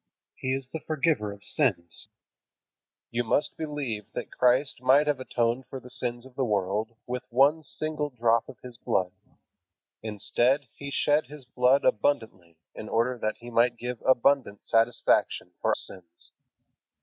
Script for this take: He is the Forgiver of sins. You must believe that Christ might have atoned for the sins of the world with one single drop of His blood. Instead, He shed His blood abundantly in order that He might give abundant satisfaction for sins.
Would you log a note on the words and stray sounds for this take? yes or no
no